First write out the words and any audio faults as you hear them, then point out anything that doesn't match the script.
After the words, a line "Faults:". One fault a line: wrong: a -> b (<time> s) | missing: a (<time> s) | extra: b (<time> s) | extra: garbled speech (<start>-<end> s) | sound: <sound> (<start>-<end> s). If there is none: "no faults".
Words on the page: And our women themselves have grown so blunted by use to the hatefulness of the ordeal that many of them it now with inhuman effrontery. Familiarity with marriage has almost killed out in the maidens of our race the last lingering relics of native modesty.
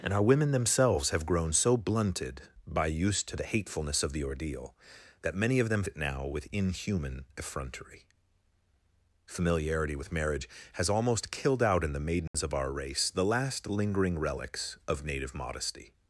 And our women themselves have grown so blunted by use to the hatefulness of the ordeal that many of them it now with inhuman effrontery. Familiarity with marriage has almost killed out in the maidens of our race the last lingering relics of native modesty.
Faults:
sound: dropout (12.3-12.3 s)